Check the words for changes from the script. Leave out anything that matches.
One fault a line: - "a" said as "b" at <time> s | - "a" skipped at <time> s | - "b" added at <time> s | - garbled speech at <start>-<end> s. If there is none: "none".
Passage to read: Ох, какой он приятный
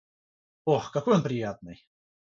none